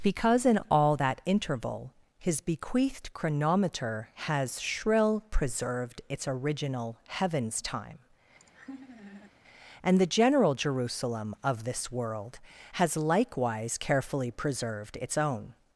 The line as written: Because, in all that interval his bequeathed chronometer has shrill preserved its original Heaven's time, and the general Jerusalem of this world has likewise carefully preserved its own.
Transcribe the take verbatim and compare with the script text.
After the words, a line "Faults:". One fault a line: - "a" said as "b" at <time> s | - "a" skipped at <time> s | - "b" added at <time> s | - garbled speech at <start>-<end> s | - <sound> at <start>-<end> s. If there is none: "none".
Because, in all that interval his bequeathed chronometer has shrill preserved its original Heaven's time, and the general Jerusalem of this world has likewise carefully preserved its own.
Faults:
- laugh at 8.4-9.3 s